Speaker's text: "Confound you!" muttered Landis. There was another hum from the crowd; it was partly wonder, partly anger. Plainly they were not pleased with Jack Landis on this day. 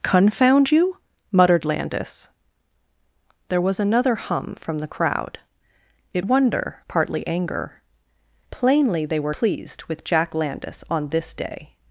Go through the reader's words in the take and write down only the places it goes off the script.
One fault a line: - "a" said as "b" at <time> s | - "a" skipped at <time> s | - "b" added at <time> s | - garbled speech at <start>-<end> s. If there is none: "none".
- "was partly" skipped at 6.3 s
- "not" skipped at 9.3 s